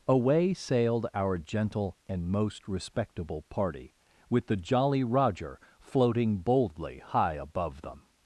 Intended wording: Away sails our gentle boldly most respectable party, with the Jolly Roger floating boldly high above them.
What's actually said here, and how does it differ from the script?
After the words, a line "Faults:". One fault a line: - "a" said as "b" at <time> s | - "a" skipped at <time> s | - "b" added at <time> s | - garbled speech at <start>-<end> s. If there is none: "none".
Away sailed our gentle and most respectable party, with the Jolly Roger floating boldly high above them.
Faults:
- "sails" said as "sailed" at 0.6 s
- "boldly" said as "and" at 2.1 s